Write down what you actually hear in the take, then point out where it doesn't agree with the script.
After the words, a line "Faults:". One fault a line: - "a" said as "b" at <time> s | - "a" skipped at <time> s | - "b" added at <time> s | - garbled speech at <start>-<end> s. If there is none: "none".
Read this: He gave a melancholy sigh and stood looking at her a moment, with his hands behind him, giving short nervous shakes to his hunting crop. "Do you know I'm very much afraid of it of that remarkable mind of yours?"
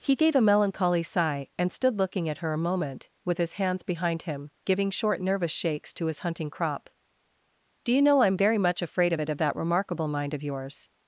He gave a melancholy sigh and stood looking at her a moment, with his hands behind him, giving short nervous shakes to his hunting crop. "Do you know I'm very much afraid of it of that remarkable mind of yours?"
Faults:
none